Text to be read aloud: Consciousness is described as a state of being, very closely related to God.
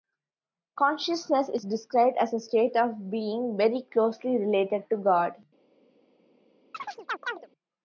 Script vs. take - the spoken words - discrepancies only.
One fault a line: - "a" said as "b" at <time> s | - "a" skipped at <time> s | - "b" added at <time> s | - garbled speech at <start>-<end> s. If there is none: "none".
none